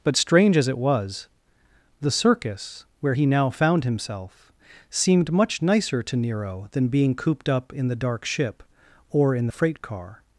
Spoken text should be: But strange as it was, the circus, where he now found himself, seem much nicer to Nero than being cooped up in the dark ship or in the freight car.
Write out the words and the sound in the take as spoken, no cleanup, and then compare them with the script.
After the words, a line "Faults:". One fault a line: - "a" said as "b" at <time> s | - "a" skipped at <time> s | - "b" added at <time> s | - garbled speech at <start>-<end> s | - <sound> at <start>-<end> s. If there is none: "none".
But strange as it was, the circus, where he now found himself, seemed much nicer to Nero than being cooped up in the dark ship or in the freight car.
Faults:
- "seem" said as "seemed" at 4.9 s